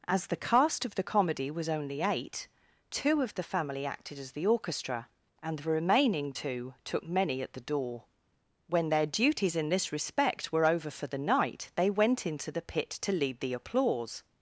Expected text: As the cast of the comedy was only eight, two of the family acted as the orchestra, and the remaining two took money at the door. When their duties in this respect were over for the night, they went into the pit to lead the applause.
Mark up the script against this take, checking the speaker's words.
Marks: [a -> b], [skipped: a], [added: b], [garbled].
As the cast of the comedy was only eight, two of the family acted as the orchestra, and the remaining two took [money -> many] at the door. When their duties in this respect were over for the night, they went into the pit to lead the applause.